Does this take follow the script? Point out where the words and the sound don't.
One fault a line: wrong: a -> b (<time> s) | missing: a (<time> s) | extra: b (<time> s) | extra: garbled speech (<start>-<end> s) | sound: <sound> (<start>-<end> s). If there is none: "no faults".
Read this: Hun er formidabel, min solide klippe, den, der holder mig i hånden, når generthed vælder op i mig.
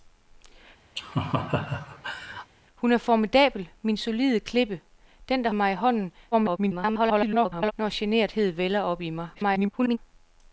sound: laugh (1.0-2.5 s)
missing: holder (5.5 s)
extra: garbled speech (6.3-7.7 s)
extra: garbled speech (9.3-10.0 s)